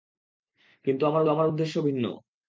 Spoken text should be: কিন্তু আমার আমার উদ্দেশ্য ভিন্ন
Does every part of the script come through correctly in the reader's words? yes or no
yes